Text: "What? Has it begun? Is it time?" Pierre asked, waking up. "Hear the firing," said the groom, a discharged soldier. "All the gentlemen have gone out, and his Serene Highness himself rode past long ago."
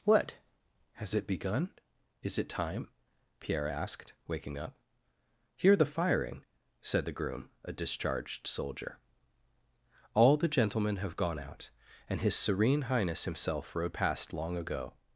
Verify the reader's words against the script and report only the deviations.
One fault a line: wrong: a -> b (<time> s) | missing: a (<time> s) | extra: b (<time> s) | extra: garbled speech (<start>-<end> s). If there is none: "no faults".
no faults